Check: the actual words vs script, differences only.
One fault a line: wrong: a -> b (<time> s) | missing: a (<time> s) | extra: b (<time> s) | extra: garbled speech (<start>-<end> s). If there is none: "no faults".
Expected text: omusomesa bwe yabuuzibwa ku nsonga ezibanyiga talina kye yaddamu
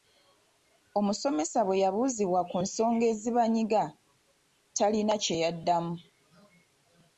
no faults